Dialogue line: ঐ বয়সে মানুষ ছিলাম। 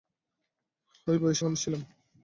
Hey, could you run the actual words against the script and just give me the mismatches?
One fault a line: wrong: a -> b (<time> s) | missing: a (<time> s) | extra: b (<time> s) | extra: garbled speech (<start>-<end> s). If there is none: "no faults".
no faults